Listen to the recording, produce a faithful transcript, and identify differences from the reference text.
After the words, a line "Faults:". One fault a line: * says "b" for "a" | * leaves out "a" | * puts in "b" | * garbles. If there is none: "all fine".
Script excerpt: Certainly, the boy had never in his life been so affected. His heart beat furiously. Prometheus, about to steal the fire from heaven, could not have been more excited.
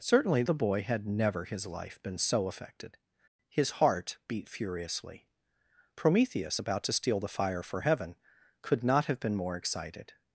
Certainly, the boy had never his life been so affected. His heart beat furiously. Prometheus, about to steal the fire for heaven, could not have been more excited.
Faults:
* leaves out "in"
* says "for" for "from"